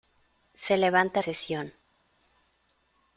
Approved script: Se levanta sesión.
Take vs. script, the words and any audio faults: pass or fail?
pass